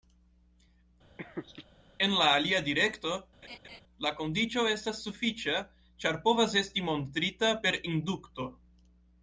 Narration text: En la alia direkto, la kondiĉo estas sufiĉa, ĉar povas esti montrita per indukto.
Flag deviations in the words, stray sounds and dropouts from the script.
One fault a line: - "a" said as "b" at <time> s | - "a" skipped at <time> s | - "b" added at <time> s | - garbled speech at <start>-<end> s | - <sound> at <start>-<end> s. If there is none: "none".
- laugh at 1.2-1.7 s
- laugh at 3.4-3.8 s